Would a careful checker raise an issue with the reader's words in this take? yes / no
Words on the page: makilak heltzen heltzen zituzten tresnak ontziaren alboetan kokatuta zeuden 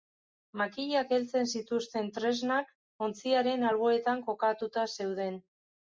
yes